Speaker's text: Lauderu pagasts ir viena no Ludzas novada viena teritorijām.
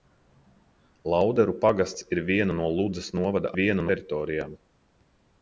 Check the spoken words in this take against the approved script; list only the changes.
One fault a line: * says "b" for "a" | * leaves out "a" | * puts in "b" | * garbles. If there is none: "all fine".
all fine